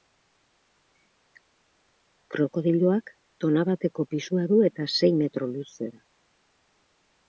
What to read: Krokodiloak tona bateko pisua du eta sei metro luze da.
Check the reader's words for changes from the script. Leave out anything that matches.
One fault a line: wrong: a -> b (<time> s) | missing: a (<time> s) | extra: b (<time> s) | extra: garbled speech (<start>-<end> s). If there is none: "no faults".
no faults